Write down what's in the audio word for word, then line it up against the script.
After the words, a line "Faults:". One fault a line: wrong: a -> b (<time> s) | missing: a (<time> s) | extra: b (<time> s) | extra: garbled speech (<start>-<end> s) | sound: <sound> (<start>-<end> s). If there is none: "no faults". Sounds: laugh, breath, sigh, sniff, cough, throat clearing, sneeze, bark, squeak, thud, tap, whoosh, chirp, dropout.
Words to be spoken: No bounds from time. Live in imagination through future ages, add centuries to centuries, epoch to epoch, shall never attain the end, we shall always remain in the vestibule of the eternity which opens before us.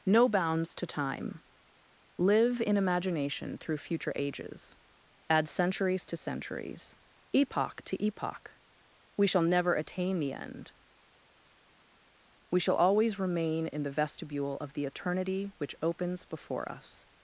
No bounds to time. Live in imagination through future ages, add centuries to centuries, epoch to epoch, we shall never attain the end, we shall always remain in the vestibule of the eternity which opens before us.
Faults:
wrong: from -> to (0.8 s)
extra: we (9.2 s)